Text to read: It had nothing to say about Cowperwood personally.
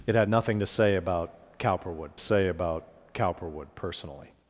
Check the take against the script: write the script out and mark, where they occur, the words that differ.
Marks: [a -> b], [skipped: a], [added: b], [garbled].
It had nothing to say about Cowperwood [added: say about Cowperwood] personally.